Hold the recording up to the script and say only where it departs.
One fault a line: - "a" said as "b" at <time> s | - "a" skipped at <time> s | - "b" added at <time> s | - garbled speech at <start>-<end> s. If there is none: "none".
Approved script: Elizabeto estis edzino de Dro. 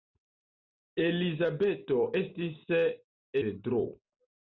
- "edzino" skipped at 2.7 s